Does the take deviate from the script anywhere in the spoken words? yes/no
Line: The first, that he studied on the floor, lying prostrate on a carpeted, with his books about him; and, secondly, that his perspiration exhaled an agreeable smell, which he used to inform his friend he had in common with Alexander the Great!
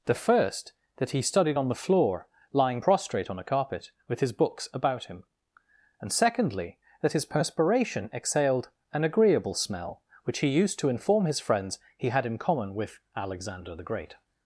yes